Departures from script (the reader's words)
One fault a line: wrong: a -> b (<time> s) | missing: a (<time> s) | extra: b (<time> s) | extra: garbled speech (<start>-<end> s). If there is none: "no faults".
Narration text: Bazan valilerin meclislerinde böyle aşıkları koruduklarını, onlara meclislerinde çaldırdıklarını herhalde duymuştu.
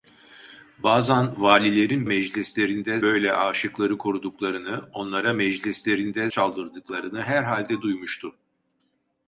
no faults